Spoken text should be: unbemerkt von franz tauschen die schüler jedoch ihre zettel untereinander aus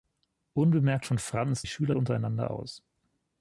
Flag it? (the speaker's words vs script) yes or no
yes